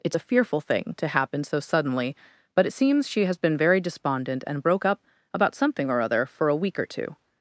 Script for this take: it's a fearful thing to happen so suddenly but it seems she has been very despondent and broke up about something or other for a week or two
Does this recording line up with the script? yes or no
yes